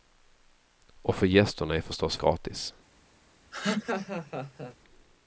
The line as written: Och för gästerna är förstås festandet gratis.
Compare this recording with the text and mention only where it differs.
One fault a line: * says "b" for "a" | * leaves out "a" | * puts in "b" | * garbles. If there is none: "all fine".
* leaves out "festandet"